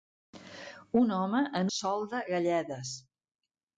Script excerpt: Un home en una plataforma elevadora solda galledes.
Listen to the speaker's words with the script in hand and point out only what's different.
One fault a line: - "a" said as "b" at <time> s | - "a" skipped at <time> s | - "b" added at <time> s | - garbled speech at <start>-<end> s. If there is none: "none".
- "una plataforma elevadora" skipped at 1.7 s